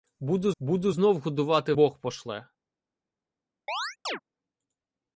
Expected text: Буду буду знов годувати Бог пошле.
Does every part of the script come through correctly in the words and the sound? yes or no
no